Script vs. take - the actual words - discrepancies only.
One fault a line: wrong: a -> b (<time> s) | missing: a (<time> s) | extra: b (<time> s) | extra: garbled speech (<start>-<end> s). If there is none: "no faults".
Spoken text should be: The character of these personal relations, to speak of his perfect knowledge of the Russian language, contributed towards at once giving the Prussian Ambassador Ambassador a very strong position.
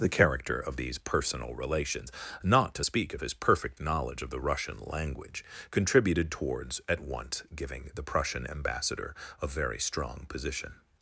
extra: not (2.4 s)
missing: Ambassador (9.2 s)